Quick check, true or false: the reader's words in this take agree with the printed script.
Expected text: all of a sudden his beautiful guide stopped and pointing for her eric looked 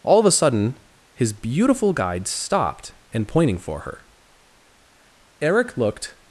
true